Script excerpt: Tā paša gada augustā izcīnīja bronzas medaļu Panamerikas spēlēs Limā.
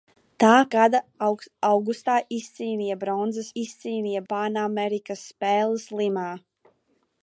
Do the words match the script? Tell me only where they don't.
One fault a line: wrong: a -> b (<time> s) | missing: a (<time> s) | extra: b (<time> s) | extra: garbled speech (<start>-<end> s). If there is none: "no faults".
missing: paša (0.5 s)
wrong: medaļu -> izcīnīja (3.6 s)